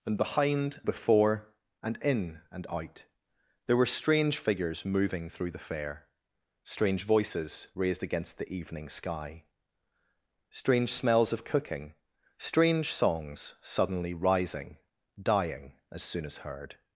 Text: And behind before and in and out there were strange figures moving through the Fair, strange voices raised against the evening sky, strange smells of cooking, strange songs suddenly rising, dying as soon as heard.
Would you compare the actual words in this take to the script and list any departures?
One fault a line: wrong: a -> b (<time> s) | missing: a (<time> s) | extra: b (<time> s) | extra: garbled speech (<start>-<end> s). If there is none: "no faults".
no faults